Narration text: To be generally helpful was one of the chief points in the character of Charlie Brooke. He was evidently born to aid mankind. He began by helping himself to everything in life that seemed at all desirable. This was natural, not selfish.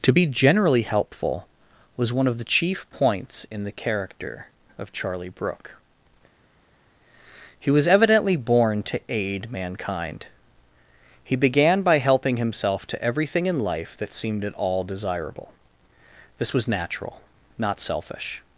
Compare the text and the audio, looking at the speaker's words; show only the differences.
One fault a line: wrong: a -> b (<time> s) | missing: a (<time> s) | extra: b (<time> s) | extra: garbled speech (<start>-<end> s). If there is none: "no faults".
no faults